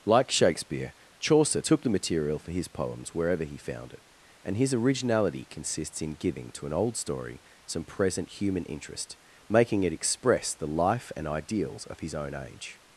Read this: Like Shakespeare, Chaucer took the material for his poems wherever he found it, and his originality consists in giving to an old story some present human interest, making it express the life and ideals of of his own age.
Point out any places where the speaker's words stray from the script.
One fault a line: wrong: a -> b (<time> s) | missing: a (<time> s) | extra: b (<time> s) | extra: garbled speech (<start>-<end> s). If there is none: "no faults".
missing: of (12.0 s)